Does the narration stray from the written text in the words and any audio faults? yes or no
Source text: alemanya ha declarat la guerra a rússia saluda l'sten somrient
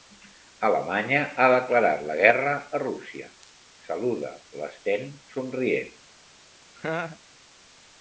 yes